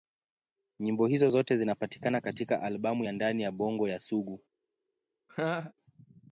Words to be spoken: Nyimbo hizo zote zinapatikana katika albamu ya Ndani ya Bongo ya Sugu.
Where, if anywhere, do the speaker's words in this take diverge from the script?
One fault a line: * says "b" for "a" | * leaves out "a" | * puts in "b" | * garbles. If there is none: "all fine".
all fine